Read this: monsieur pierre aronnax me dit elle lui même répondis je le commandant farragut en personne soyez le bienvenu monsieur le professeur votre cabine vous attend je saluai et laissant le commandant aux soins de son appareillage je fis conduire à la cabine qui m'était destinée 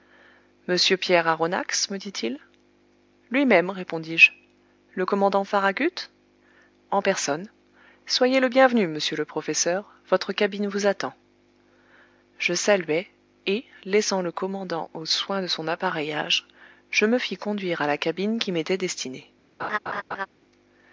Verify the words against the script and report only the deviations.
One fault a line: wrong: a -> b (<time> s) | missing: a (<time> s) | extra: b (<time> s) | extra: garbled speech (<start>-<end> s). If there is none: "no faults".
wrong: elle -> il (2.2 s)
extra: me (17.1 s)